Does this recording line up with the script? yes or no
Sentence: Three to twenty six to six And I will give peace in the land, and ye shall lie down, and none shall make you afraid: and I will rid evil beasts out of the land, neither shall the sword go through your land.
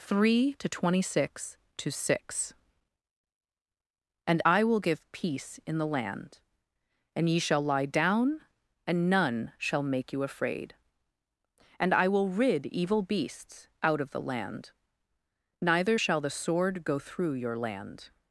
yes